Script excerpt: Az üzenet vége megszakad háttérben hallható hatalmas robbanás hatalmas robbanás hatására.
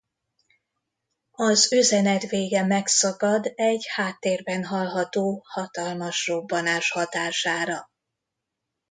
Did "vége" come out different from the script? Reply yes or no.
no